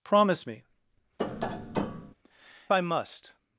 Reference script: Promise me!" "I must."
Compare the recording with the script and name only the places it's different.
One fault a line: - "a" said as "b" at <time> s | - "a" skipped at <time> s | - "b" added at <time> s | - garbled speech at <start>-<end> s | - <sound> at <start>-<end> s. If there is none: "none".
- tap at 1.2-2.2 s